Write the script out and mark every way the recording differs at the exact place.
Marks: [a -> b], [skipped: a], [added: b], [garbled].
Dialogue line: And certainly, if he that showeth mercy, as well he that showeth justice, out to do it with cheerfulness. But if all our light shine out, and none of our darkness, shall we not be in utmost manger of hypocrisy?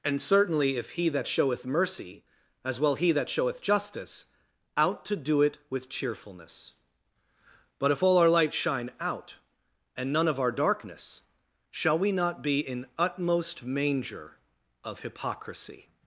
And certainly, if he that showeth mercy, as well he that showeth justice, out to do it with cheerfulness. But if all our light shine out, and none of our darkness, shall we not be in utmost manger of hypocrisy?